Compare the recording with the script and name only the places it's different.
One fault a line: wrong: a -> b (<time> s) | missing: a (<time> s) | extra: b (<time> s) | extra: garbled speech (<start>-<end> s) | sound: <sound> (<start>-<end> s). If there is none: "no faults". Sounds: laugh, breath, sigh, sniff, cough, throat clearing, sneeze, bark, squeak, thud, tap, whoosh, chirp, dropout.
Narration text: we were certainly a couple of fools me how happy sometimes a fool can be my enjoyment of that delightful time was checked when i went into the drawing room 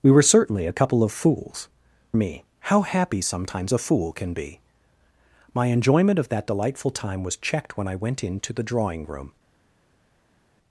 no faults